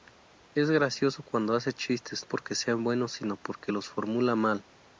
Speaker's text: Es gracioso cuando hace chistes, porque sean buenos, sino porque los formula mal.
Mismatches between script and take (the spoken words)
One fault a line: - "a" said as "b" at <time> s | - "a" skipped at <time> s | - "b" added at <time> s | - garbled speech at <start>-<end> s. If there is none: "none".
none